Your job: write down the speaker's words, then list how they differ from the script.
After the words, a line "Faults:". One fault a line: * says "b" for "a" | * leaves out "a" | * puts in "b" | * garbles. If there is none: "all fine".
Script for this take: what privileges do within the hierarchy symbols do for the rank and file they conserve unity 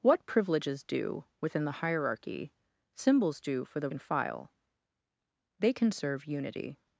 what privileges do within the hierarchy symbols do for the and file they conserve unity
Faults:
* leaves out "rank"